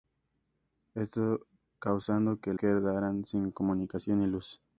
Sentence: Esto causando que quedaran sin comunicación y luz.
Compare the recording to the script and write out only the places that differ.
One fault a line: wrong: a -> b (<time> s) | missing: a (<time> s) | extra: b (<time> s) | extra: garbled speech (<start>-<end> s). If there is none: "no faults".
no faults